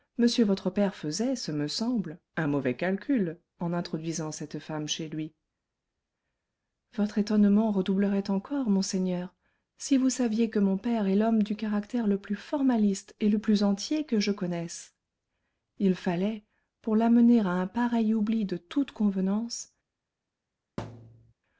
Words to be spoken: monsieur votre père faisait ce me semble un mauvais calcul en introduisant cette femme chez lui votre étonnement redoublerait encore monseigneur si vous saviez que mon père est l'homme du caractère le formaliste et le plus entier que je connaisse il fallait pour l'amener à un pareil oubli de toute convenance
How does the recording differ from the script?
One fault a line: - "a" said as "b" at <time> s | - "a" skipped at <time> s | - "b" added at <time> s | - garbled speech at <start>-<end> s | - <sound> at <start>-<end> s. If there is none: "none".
- "plus" added at 12.2 s
- thud at 20.8-21.3 s